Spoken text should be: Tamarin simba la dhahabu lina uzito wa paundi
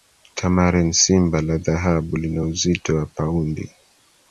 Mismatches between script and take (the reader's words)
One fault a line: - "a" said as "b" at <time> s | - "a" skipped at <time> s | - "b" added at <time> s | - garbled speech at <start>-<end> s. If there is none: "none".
none